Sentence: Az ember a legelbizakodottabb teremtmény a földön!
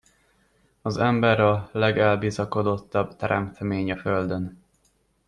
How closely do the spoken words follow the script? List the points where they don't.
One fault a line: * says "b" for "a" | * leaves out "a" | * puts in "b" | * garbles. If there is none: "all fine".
all fine